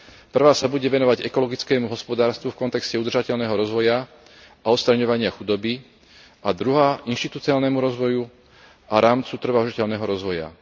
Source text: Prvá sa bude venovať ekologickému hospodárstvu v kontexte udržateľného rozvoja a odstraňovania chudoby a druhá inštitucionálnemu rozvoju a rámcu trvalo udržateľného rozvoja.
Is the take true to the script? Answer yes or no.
yes